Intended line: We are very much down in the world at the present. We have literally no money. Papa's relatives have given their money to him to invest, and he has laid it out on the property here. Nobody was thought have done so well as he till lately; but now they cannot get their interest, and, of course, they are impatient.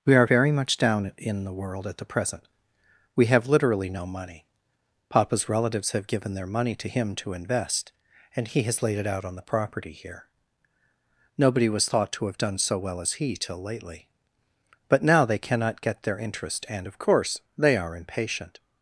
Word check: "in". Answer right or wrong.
right